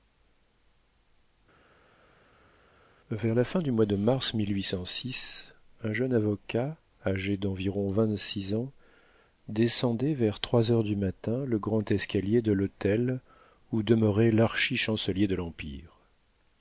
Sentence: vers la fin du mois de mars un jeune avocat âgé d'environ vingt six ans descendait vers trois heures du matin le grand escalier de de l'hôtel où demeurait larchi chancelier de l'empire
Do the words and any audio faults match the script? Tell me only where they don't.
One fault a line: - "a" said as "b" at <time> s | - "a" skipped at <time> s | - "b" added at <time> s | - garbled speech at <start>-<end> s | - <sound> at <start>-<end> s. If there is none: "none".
- "de" skipped at 12.5 s